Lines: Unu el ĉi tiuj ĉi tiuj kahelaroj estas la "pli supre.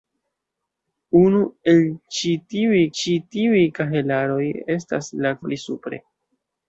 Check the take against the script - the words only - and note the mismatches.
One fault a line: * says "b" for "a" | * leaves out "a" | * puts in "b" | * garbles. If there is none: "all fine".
all fine